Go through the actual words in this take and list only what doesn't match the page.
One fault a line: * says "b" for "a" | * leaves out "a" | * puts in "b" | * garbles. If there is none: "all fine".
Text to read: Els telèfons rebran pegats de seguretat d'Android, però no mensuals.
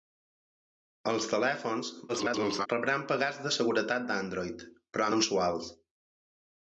* garbles
* leaves out "no"